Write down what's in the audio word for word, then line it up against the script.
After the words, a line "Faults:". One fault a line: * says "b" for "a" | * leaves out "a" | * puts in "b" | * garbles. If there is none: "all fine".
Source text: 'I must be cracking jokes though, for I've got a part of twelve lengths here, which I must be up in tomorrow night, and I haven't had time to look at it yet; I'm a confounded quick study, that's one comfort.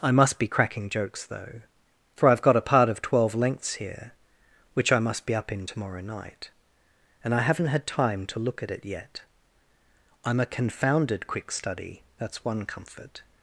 'I must be cracking jokes though, for I've got a part of twelve lengths here, which I must be up in tomorrow night, and I haven't had time to look at it yet; I'm a confounded quick study, that's one comfort.
Faults:
all fine